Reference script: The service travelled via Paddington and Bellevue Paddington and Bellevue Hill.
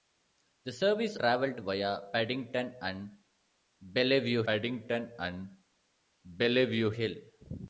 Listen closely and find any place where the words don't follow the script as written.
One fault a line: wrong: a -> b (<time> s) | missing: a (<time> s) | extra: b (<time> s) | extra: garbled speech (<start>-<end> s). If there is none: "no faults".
no faults